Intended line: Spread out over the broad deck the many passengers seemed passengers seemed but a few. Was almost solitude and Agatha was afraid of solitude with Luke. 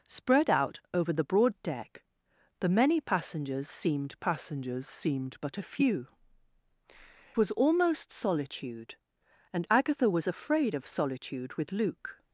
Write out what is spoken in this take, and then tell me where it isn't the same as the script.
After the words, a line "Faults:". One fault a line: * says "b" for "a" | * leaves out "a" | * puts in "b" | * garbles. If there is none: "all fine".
Spread out over the broad deck the many passengers seemed passengers seemed but a few. Was almost solitude and Agatha was afraid of solitude with Luke.
Faults:
all fine